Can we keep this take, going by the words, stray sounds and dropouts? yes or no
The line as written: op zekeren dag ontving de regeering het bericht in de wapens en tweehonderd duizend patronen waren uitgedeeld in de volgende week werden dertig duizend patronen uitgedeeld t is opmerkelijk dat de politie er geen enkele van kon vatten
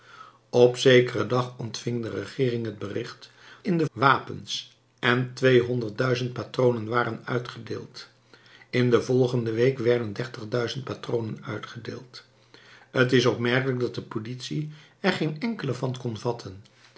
yes